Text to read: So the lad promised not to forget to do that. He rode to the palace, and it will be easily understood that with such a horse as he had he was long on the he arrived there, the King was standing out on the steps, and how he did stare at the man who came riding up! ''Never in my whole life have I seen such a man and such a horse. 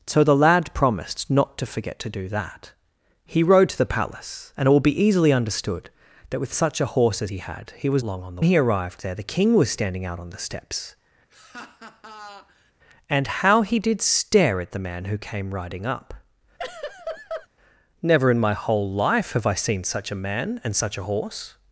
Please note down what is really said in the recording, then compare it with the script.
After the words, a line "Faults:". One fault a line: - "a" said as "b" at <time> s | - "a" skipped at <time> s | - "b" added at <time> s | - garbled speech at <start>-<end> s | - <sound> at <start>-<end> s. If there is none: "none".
So the lad promised not to forget to do that. He rode to the palace, and it will be easily understood that with such a horse as he had he was long on the he arrived there, the King was standing out on the steps, and how he did stare at the man who came riding up! ''Never in my whole life have I seen such a man and such a horse.
Faults:
- laugh at 11.3-12.7 s
- laugh at 16.6-17.5 s